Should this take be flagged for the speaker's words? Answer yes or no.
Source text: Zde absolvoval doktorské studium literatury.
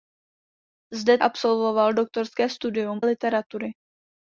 no